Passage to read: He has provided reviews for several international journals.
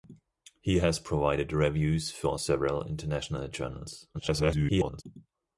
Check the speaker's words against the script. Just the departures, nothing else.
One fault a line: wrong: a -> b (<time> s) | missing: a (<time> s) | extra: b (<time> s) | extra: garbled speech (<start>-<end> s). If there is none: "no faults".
extra: garbled speech (4.1-5.0 s)